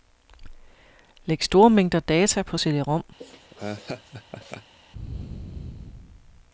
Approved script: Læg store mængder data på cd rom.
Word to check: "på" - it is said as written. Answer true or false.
true